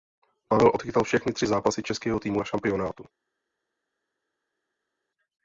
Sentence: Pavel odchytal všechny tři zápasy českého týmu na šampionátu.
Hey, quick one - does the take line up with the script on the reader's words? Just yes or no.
yes